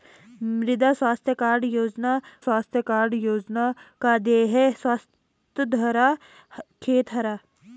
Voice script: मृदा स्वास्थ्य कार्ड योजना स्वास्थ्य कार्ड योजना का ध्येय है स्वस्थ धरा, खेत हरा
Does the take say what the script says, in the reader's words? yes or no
yes